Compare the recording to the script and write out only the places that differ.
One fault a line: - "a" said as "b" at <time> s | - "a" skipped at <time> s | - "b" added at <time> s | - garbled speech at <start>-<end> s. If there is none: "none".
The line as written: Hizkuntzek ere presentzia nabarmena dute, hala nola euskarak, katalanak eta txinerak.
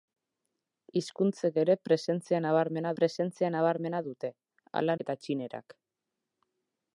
- "presentzia nabarmena" added at 3.0 s
- "nola euskarak katalanak" skipped at 5.0 s